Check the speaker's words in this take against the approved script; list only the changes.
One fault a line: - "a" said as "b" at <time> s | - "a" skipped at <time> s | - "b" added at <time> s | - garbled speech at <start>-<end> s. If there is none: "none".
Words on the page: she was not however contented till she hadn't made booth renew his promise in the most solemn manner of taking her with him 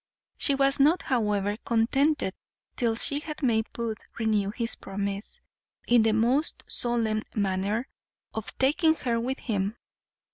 - "hadn't" said as "had" at 3.2 s